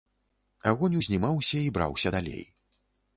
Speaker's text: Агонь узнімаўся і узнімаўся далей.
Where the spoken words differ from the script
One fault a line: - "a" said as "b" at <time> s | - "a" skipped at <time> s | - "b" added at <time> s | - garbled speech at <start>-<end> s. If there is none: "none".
- "узнімаўся" said as "браўся" at 1.8 s